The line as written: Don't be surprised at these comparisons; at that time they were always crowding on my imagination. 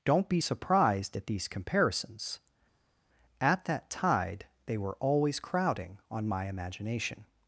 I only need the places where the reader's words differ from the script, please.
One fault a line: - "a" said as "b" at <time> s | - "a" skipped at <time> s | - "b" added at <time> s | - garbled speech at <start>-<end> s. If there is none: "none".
- "time" said as "tide" at 3.9 s